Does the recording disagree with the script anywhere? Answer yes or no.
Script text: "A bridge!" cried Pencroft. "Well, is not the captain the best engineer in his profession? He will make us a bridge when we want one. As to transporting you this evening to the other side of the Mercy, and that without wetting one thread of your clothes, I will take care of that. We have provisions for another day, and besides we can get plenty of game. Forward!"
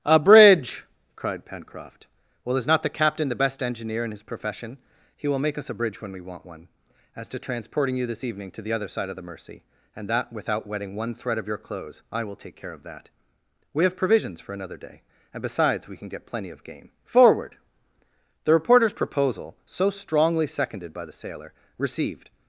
yes